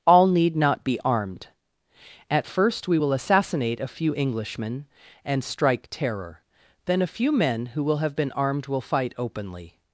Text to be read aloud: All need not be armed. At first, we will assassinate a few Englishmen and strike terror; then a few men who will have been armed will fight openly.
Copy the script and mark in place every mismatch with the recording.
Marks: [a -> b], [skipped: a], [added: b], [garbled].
All need not be armed. At first, we will assassinate a few Englishmen and strike terror; then a few men who will have been armed will fight openly.